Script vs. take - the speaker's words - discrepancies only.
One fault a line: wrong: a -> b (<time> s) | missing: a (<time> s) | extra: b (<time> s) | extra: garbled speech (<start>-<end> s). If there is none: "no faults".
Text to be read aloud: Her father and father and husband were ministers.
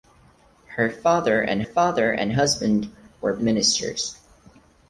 no faults